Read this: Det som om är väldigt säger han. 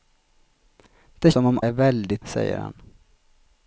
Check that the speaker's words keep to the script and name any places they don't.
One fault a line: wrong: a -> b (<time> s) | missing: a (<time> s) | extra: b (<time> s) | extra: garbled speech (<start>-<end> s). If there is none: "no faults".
no faults